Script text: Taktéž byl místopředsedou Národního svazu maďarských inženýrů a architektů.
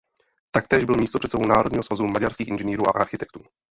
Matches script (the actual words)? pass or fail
pass